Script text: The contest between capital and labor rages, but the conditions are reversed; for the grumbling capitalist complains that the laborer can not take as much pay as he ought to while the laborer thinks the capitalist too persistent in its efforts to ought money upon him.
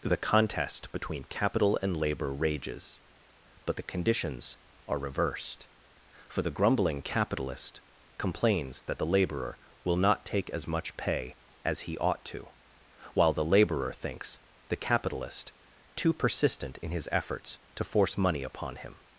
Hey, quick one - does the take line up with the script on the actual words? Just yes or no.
no